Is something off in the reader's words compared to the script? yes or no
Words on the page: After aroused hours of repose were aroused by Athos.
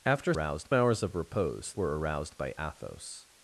no